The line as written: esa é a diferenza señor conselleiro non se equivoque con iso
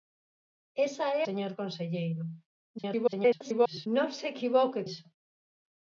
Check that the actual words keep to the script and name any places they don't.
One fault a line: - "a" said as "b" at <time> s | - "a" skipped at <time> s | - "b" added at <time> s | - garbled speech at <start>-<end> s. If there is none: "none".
- "a diferenza" skipped at 1.2 s
- garbled speech at 2.8-3.9 s
- "con" skipped at 4.8 s